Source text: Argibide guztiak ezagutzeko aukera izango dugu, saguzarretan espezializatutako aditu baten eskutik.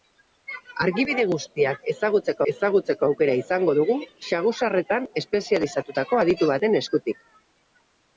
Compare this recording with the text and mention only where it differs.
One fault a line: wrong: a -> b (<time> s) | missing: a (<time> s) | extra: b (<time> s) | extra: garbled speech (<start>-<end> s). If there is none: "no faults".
extra: ezagutzeko (2.5 s)